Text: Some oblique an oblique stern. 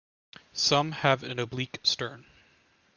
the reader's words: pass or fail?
fail